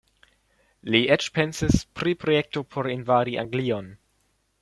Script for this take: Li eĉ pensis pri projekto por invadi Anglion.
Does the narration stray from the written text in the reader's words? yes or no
no